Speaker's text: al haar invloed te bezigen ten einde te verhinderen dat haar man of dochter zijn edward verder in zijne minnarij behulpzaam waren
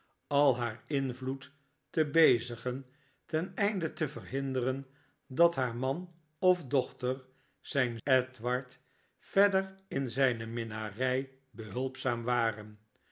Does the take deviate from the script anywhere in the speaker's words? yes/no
no